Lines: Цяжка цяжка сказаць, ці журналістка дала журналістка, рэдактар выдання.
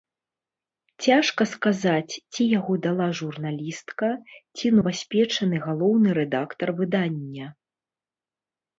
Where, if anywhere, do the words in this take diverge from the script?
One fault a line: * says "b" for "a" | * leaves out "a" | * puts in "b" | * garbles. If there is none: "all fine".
* leaves out "цяжка"
* says "яго" for "журналістка"
* puts in "ці новаспечаны галоўны"